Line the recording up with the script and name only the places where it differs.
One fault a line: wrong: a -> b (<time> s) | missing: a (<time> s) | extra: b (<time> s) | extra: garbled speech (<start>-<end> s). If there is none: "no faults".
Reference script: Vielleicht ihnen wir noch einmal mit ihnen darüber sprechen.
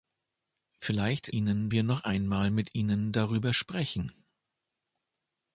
no faults